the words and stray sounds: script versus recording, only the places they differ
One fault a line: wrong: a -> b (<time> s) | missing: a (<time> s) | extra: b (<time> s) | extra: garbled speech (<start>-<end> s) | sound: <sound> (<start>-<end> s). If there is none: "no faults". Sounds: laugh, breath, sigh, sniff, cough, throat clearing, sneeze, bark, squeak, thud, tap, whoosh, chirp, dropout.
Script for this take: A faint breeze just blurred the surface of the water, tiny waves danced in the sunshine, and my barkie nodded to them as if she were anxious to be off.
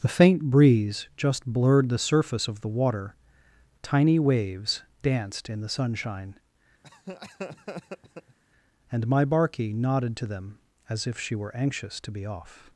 wrong: A -> The (0.0 s)
sound: laugh (6.8-8.4 s)